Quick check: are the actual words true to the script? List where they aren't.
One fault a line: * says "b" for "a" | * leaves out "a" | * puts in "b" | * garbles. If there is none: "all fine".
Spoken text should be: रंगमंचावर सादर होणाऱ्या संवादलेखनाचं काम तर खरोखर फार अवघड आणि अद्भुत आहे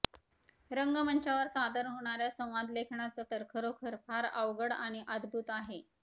* leaves out "काम"